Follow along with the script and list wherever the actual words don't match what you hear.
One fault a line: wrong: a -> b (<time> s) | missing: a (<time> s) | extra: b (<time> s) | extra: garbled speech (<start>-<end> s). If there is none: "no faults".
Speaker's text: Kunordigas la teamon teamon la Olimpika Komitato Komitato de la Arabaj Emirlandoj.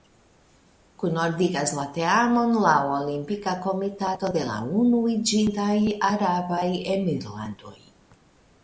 missing: teamon (2.6 s)
missing: Komitato (4.3 s)
extra: Unuiĝintaj (4.8 s)